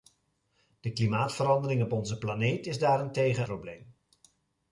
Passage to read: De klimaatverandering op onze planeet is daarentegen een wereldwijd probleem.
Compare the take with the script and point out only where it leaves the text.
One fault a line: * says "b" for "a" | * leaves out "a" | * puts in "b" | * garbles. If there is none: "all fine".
* leaves out "een wereldwijd"